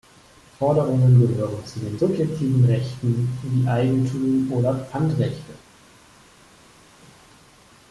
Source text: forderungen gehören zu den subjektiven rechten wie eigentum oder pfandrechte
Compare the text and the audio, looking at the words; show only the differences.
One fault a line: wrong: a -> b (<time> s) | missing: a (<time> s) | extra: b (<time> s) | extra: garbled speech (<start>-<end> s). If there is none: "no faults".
no faults